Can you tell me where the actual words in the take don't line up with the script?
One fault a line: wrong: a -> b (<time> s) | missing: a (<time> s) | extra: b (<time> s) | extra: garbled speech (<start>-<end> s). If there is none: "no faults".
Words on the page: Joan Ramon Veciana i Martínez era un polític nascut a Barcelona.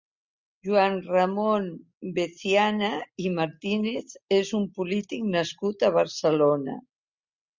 wrong: era -> és (4.4 s)